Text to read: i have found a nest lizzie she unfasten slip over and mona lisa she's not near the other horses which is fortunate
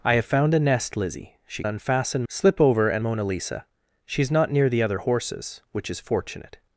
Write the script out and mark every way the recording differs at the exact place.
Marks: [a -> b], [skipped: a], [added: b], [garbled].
i have found a nest lizzie she unfasten slip over and mona lisa she's not near the other horses which is fortunate